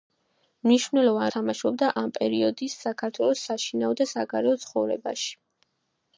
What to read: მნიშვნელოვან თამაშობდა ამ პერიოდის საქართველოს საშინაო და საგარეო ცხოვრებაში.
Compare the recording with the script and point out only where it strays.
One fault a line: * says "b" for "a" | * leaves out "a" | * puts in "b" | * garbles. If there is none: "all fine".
all fine